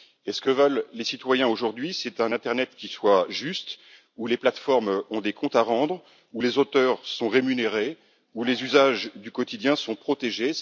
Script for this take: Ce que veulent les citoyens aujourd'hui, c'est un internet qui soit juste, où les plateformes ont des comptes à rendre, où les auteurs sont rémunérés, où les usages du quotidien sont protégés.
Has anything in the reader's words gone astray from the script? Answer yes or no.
no